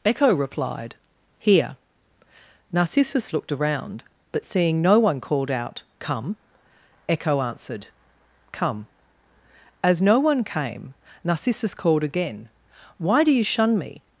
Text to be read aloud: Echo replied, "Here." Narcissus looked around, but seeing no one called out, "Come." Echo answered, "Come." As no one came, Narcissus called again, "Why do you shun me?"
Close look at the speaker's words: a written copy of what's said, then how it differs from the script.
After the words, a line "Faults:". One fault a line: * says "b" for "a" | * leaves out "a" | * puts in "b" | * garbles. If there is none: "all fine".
Echo replied, "Here." Narcissus looked around, but seeing no one called out, "Come." Echo answered, "Come." As no one came, Narcissus called again, "Why do you shun me?"
Faults:
all fine